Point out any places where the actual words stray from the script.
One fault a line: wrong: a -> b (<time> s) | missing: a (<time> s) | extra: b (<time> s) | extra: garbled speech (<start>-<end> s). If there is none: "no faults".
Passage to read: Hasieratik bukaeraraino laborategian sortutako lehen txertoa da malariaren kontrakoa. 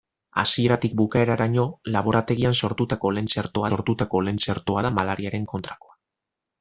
extra: sortutako lehen txertoa (3.7 s)